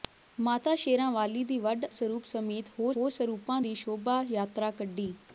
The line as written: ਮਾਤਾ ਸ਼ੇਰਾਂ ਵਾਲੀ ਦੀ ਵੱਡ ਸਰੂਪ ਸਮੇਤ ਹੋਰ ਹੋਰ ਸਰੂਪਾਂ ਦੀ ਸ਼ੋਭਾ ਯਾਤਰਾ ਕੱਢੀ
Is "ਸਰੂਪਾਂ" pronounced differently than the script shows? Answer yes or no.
no